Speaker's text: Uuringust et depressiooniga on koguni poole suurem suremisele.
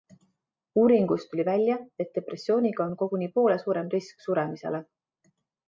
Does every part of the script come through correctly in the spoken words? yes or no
no